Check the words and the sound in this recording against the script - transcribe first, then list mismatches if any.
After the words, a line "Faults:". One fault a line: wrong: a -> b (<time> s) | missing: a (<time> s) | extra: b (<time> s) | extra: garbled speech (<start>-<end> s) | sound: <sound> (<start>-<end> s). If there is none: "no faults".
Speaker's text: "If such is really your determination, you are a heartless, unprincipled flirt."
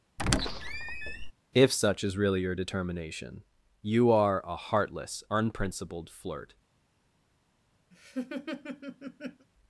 "If such is really your determination, you are a heartless, unprincipled flirt."
Faults:
sound: squeak (0.2-1.3 s)
sound: laugh (7.9-9.5 s)